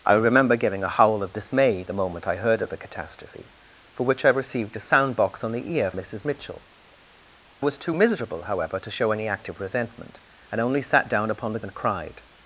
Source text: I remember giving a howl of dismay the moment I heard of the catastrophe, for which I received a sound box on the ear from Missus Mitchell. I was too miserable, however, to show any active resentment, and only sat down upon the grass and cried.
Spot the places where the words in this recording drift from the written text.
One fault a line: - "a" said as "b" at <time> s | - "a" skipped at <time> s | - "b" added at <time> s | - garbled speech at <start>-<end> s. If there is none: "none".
- "from" skipped at 5.9 s
- "I" skipped at 6.6 s
- "grass" skipped at 11.6 s